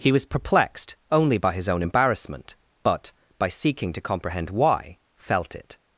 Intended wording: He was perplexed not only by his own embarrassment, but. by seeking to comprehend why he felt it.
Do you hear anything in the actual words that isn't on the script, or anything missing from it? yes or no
yes